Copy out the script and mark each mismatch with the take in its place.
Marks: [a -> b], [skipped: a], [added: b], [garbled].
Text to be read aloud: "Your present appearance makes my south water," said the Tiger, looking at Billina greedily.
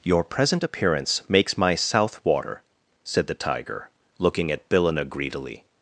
"Your present appearance makes my south water," said the Tiger, looking at Billina greedily.